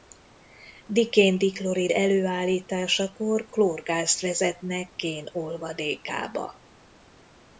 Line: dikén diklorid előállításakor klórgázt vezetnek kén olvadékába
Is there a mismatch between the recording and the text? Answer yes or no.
no